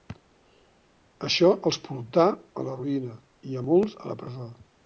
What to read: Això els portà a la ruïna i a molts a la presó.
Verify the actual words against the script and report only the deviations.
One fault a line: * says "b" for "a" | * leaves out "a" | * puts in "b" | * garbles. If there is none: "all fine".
all fine